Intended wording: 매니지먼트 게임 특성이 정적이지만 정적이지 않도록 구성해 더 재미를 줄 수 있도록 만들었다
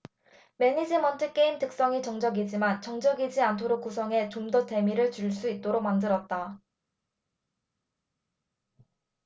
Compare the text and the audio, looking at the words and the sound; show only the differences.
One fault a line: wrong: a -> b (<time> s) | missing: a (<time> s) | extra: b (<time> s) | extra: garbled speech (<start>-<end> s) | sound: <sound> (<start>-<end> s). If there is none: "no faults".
extra: 좀 (4.3 s)